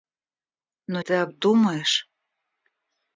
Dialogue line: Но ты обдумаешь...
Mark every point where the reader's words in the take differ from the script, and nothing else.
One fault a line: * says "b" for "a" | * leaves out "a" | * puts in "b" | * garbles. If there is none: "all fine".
all fine